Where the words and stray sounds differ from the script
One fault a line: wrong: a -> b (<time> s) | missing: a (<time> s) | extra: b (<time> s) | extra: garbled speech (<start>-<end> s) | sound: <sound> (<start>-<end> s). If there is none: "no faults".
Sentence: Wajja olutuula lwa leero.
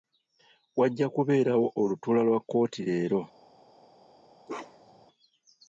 extra: kubeerawo (1.1 s)
extra: kkooti (2.4 s)
sound: bark (4.5-5.1 s)